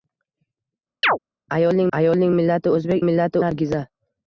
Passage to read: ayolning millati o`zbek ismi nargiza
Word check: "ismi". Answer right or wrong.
wrong